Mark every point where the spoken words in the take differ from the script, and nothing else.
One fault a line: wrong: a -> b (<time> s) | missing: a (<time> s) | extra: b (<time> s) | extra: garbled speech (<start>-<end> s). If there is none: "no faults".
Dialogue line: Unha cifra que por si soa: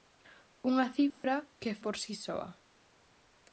no faults